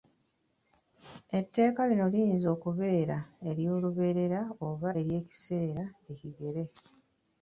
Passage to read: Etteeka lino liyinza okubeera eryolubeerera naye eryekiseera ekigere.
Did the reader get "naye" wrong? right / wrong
wrong